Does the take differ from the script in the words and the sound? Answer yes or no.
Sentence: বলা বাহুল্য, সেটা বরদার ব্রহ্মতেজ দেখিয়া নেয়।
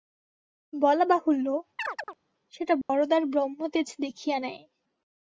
yes